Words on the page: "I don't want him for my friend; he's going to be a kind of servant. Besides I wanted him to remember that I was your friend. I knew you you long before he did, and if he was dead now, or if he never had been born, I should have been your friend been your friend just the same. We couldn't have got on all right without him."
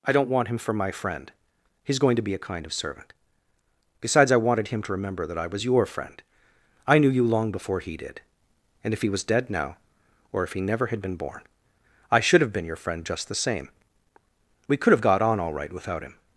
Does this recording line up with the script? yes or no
no